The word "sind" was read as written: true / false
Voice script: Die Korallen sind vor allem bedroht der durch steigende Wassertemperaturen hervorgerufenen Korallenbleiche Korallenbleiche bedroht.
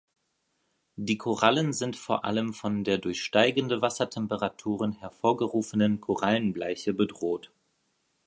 true